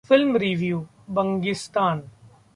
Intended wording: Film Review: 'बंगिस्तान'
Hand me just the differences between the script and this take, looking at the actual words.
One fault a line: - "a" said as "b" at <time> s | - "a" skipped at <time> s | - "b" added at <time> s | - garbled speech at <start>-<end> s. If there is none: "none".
none